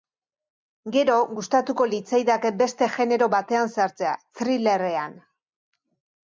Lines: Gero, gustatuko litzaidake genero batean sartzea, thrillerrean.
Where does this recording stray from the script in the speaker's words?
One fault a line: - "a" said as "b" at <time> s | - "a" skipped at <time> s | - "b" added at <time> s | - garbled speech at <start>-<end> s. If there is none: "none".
- "beste" added at 2.6 s